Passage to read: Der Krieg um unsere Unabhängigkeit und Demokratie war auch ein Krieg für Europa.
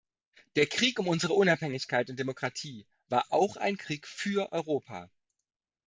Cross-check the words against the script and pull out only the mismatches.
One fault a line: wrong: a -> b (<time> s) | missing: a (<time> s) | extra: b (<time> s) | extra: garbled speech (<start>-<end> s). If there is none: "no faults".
no faults